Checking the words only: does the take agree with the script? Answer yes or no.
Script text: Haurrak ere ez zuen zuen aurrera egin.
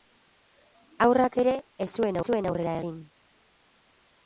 yes